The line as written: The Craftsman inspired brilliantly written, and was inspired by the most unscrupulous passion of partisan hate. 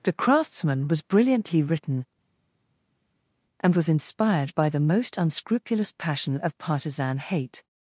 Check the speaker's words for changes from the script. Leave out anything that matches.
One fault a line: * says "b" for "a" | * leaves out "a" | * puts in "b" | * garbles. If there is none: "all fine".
* says "was" for "inspired"